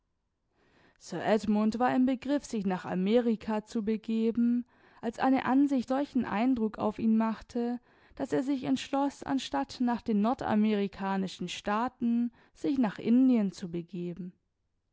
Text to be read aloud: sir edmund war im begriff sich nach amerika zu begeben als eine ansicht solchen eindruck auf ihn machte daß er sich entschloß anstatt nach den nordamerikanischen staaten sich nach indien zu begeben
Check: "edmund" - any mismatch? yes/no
no